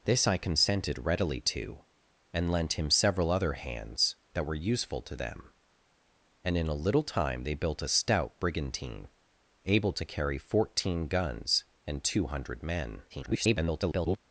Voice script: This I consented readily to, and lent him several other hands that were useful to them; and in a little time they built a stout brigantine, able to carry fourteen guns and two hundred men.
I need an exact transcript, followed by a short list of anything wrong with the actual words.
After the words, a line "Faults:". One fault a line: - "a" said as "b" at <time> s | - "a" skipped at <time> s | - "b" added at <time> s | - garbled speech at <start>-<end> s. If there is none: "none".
This I consented readily to, and lent him several other hands that were useful to them; and in a little time they built a stout brigantine, able to carry fourteen guns and two hundred men. [garbled]
Faults:
- garbled speech at 13.1-14.2 s